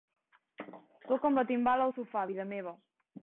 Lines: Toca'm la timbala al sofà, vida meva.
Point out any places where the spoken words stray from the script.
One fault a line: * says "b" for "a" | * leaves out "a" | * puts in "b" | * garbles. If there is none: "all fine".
all fine